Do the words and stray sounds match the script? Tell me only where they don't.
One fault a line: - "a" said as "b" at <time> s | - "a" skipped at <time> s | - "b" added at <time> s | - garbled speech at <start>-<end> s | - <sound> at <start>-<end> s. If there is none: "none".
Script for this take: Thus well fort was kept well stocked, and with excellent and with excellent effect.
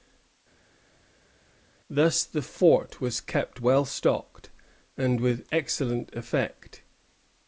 - "well" said as "the" at 2.2 s
- "and with excellent" skipped at 6.1 s